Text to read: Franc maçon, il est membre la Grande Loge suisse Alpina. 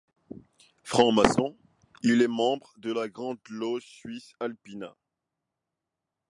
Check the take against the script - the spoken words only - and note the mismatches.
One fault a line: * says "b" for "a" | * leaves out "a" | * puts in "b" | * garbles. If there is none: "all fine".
* puts in "de"